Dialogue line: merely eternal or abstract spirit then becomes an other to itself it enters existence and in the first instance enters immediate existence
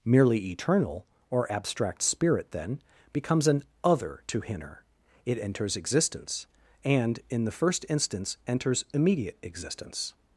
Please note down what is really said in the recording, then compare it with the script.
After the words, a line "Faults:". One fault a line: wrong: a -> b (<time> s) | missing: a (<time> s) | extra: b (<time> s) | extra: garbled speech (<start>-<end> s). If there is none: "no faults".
merely eternal or abstract spirit then becomes an other to hinner it enters existence and in the first instance enters immediate existence
Faults:
wrong: itself -> hinner (4.4 s)